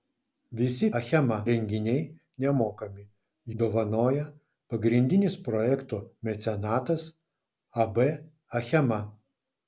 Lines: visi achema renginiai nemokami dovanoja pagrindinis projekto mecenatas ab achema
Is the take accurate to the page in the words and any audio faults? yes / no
yes